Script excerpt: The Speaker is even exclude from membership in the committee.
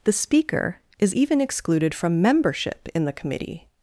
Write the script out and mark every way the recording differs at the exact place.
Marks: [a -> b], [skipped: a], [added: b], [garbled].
The Speaker is even [exclude -> excluded] from membership in the committee.